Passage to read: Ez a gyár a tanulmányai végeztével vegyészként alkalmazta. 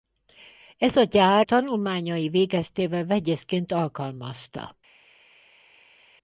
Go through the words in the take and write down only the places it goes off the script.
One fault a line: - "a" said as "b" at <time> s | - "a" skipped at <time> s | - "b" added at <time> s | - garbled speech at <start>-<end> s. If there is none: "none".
- "a" skipped at 1.5 s